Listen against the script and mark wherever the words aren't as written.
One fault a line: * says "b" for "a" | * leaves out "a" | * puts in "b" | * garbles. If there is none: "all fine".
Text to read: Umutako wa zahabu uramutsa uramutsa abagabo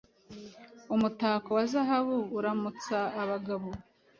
* leaves out "uramutsa"